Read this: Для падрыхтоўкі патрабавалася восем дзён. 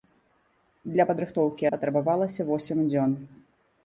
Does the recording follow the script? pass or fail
pass